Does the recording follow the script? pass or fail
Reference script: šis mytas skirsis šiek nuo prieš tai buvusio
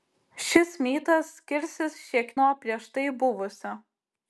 pass